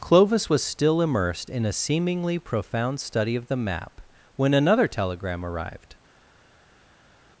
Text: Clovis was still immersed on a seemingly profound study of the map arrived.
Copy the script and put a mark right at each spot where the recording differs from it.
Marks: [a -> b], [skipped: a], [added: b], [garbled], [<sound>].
Clovis was still immersed [on -> in] a seemingly profound study of the map [added: when another telegram] arrived.